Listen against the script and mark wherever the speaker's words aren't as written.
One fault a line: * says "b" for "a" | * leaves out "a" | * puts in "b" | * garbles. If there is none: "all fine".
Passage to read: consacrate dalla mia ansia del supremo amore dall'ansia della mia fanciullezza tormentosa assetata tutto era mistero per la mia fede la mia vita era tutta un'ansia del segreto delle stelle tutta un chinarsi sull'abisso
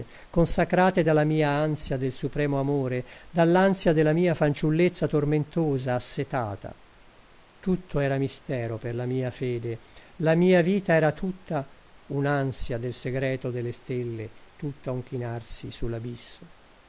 all fine